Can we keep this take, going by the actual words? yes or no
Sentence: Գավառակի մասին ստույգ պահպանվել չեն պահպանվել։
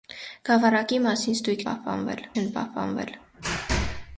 yes